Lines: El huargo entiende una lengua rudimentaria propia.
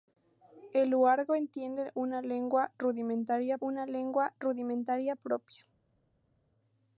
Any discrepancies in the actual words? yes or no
yes